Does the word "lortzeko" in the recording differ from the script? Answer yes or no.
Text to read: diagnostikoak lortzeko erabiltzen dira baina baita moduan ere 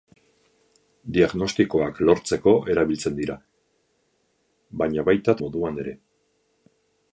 no